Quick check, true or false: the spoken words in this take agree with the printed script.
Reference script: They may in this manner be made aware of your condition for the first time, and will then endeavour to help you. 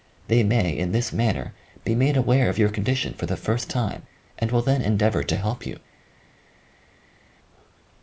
true